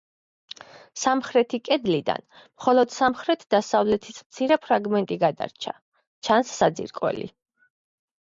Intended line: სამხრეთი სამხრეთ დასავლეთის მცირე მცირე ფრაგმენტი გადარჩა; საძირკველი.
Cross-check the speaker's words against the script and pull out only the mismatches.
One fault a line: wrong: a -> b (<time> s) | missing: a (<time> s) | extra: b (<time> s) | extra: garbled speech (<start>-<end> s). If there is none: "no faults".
extra: კედლიდან მხოლოდ (1.7 s)
missing: მცირე (4.6 s)
extra: ჩანს (6.3 s)